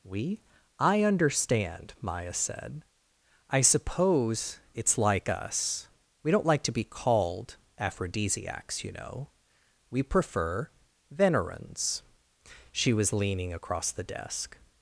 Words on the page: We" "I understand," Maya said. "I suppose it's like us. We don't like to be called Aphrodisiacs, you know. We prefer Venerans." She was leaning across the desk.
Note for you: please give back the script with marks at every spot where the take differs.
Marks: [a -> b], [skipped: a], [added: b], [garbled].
We" "I understand," Maya said. "I suppose it's like us. We don't like to be called Aphrodisiacs, you know. We prefer Venerans." She was leaning across the desk.